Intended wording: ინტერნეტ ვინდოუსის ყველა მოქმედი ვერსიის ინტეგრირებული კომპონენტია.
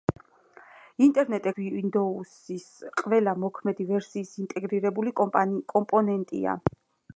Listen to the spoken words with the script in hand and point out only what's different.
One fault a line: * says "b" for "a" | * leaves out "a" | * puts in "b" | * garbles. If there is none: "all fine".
all fine